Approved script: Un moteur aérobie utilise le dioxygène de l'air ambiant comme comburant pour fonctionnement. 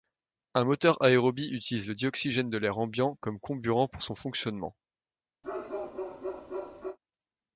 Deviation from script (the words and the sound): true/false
true